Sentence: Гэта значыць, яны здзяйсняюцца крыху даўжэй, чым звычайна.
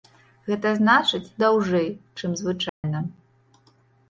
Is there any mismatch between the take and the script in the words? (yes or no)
yes